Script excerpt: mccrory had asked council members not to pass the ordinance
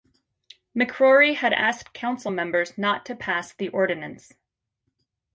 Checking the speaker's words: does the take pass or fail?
pass